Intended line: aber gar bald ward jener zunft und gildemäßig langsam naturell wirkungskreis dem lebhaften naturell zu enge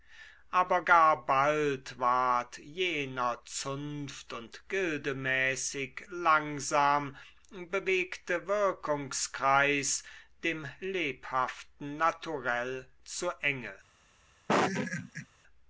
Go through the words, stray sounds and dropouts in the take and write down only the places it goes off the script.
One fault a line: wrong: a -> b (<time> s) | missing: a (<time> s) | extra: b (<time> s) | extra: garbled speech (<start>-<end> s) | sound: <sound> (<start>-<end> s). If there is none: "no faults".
wrong: naturell -> bewegte (7.5 s)
sound: laugh (14.5-15.3 s)